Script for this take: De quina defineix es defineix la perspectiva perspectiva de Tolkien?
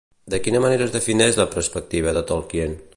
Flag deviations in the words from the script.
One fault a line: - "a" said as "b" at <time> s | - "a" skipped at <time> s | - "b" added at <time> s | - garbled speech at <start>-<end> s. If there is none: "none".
- "defineix" said as "manera" at 0.6 s
- "perspectiva" skipped at 2.2 s